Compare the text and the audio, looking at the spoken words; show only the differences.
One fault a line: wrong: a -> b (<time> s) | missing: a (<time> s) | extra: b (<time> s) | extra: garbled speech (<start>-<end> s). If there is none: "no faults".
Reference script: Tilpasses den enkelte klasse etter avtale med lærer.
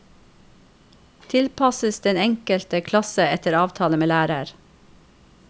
no faults